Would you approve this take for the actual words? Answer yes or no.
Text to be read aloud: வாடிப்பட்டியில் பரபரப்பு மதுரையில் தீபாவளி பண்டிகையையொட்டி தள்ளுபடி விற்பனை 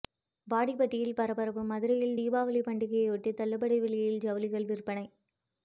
no